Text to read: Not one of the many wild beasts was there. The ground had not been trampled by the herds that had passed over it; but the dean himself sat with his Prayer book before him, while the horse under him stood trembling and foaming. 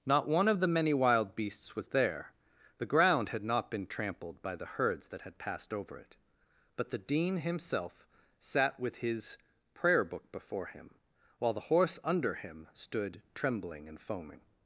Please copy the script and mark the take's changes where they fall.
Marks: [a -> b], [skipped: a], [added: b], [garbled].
Not one of the many wild beasts was there. The ground had not been trampled by the herds that had passed over it; but the dean himself sat with his Prayer book before him, while the horse under him stood trembling and foaming.